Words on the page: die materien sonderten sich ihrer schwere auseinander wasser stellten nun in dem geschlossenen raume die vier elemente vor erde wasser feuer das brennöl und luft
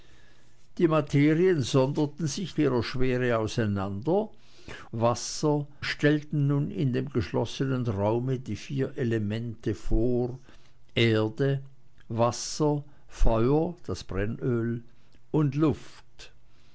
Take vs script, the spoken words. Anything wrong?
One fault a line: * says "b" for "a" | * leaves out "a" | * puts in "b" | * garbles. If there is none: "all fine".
all fine